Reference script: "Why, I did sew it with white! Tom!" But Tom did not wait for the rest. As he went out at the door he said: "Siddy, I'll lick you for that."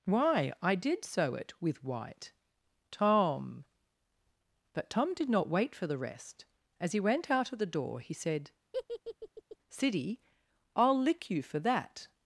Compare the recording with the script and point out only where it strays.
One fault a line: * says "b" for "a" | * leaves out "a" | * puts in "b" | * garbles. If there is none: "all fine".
* says "of" for "at"